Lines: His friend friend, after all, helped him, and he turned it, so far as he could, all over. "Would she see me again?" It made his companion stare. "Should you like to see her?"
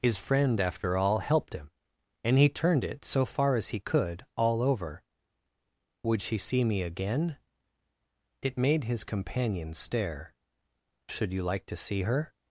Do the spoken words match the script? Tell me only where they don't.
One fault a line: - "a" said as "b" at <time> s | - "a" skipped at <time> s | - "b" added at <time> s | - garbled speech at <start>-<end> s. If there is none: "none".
- "friend" skipped at 0.6 s